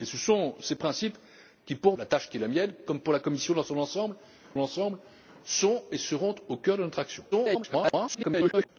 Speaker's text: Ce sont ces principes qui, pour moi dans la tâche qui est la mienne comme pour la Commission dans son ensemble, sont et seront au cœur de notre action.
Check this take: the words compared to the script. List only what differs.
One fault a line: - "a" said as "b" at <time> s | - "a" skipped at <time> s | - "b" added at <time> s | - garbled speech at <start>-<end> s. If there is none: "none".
- "moi dans" skipped at 2.0 s
- "ensemble" added at 4.6 s
- garbled speech at 7.3-8.7 s